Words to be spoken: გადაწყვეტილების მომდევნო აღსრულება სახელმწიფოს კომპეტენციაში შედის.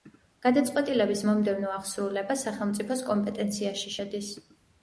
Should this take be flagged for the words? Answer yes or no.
no